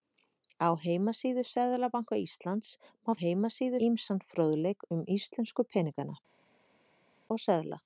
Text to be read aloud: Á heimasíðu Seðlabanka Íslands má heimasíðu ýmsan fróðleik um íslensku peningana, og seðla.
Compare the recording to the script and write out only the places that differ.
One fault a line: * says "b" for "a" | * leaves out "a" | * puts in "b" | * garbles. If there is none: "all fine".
all fine